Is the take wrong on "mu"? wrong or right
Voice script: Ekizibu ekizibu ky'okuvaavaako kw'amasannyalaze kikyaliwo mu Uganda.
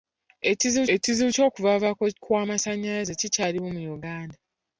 right